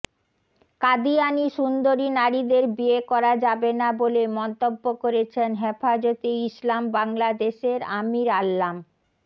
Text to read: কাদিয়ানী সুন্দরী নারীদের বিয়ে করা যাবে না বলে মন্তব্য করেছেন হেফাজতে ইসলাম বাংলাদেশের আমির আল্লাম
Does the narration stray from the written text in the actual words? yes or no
no